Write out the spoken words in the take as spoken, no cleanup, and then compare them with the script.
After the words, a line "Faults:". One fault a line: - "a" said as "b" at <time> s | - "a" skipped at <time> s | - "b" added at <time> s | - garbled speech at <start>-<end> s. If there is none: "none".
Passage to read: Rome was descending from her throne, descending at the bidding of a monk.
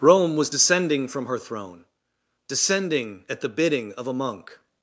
Rome was descending from her throne, descending at the bidding of a monk.
Faults:
none